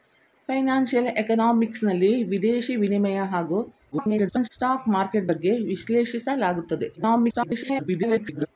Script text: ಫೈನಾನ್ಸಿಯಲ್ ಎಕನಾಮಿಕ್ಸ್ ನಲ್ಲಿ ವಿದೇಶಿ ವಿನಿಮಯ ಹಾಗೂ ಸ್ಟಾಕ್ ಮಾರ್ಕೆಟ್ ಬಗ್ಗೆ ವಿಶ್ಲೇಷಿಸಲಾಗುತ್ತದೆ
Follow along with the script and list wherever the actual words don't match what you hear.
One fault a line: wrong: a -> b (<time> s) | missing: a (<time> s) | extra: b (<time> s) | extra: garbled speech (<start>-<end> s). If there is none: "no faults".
extra: garbled speech (3.9-4.5 s)
extra: garbled speech (7.0-8.5 s)